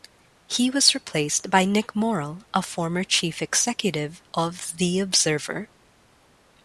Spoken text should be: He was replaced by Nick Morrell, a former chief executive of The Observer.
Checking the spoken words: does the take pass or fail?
pass